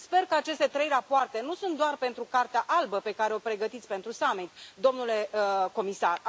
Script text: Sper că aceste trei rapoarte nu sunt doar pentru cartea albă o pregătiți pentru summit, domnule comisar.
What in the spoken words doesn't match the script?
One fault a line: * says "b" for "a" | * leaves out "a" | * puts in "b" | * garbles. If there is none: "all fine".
* puts in "pe care"